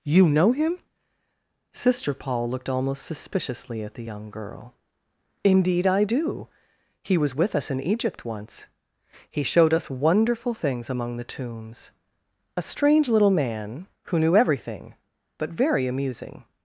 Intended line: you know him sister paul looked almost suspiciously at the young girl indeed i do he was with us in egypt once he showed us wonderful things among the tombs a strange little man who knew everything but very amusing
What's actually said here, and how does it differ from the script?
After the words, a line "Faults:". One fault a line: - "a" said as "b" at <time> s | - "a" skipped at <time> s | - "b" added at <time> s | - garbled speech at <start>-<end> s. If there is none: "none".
you know him sister paul looked almost suspiciously at the young girl indeed i do he was with us in egypt once he showed us wonderful things among the tombs a strange little man who knew everything but very amusing
Faults:
none